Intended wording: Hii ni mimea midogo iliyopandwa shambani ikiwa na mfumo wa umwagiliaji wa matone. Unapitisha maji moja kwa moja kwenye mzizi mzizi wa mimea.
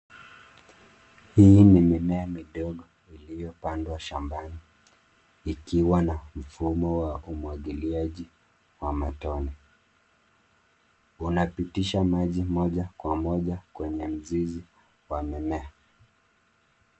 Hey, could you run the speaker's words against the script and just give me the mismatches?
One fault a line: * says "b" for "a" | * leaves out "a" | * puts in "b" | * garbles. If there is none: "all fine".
* leaves out "mzizi"